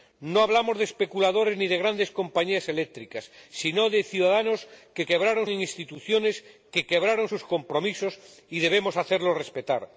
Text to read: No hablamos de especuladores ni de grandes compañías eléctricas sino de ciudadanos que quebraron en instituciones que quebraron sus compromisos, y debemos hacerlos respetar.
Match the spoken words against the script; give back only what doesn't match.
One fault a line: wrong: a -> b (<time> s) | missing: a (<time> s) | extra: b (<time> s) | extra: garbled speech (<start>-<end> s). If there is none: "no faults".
no faults